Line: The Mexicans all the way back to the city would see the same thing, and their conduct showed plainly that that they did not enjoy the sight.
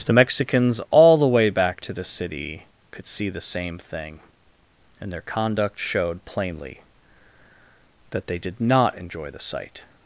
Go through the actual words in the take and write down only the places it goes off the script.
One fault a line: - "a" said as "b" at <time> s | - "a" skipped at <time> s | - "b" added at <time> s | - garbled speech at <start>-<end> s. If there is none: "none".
- "would" said as "could" at 2.9 s
- "that" skipped at 8.3 s